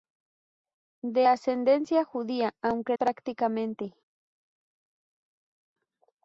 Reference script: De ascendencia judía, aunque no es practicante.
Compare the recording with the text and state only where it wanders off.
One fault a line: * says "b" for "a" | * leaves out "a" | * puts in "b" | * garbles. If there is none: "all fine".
* leaves out "no es"